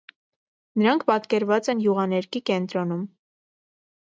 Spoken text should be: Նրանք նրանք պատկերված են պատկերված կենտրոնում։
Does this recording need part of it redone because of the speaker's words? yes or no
yes